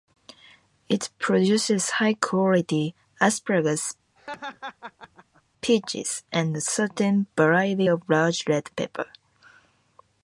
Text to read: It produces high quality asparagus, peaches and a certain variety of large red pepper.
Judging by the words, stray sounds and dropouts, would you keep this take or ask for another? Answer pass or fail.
fail